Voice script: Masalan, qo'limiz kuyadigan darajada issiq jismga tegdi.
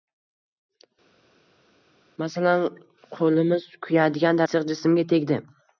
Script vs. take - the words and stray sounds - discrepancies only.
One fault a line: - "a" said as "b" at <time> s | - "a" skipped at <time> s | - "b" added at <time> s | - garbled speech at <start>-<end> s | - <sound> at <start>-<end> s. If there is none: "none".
- "darajada" skipped at 4.4 s